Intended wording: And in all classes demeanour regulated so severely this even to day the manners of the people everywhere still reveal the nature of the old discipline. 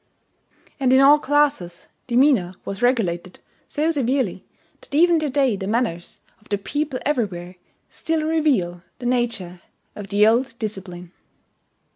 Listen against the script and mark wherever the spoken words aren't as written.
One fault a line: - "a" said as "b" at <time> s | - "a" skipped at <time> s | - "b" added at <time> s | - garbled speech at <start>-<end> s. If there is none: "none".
- "was" added at 2.6 s
- "this" said as "that" at 4.8 s